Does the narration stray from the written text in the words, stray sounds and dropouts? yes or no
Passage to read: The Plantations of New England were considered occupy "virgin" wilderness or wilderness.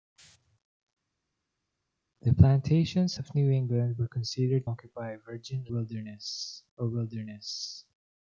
no